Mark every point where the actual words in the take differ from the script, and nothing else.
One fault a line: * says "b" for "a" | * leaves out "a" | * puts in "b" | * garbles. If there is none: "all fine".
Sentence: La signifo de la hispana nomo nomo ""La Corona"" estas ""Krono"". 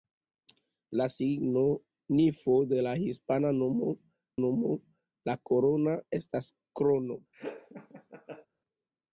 all fine